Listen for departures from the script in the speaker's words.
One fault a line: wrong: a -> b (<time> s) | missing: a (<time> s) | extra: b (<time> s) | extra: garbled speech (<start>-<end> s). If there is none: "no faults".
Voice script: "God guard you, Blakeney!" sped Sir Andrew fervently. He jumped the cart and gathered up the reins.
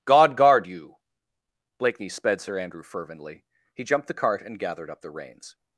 no faults